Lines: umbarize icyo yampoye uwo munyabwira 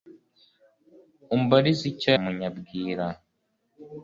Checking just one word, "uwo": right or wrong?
wrong